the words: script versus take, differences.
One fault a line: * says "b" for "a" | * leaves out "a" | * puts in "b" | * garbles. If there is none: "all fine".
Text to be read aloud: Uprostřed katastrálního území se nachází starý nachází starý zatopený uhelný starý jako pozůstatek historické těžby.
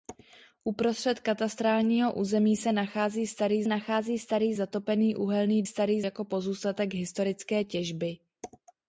all fine